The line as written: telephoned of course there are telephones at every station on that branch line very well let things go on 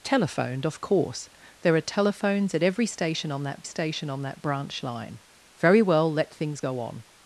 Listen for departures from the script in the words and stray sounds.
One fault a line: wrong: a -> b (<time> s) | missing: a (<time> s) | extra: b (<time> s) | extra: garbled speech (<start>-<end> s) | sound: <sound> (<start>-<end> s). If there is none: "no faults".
extra: station on that (3.6 s)